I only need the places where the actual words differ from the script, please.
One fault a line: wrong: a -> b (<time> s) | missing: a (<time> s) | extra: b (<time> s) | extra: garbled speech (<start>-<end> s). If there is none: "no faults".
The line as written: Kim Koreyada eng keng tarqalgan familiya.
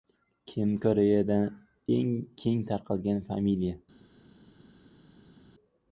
no faults